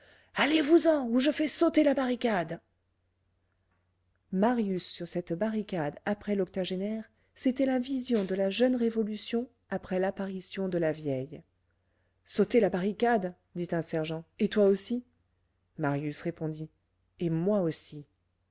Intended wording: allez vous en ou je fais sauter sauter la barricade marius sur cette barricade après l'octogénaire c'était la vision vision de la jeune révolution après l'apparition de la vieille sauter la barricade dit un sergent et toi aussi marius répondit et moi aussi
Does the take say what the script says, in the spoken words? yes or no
no